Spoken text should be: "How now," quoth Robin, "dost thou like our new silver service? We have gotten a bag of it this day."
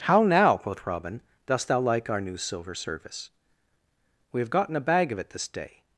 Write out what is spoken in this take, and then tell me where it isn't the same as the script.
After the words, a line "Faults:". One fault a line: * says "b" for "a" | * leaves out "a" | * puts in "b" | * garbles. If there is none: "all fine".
"How now," quoth Robin, "dost thou like our new silver service? We have gotten a bag of it this day."
Faults:
all fine